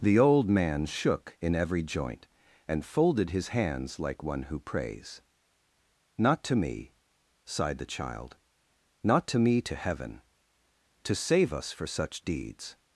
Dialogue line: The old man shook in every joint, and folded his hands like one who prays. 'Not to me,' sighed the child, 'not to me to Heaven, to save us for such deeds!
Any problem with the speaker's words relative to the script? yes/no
no